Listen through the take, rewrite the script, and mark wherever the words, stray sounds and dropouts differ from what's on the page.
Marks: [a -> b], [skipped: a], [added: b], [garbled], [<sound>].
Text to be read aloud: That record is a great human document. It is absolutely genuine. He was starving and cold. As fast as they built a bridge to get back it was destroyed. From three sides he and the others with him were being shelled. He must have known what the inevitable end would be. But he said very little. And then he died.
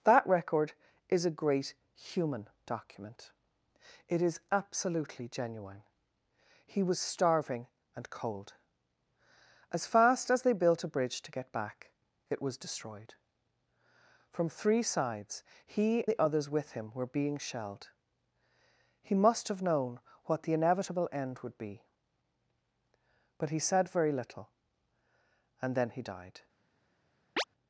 That record is a great human document. It is absolutely genuine. He was starving and cold. As fast as they built a bridge to get back it was destroyed. From three sides he [skipped: and] the others with him were being shelled. He must have known what the inevitable end would be. But he said very little. And then he died. [chirp]